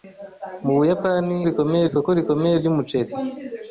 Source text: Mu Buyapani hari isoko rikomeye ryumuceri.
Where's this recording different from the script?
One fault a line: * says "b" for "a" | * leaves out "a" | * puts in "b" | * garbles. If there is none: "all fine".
* says "rikomeye" for "hari"